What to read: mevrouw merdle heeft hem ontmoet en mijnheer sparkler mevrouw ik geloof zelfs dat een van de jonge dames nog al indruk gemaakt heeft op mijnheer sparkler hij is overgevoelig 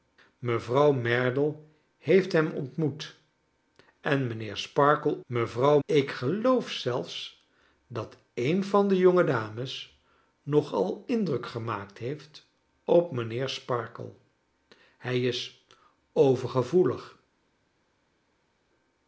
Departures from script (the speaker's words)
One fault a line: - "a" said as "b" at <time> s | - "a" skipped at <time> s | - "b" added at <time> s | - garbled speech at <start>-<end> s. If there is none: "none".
none